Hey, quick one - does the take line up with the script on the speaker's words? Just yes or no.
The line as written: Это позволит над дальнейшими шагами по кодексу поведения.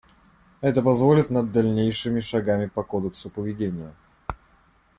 yes